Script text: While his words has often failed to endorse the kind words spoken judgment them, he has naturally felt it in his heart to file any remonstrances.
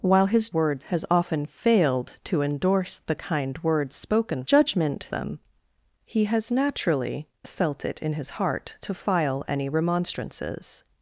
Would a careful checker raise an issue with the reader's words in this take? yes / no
no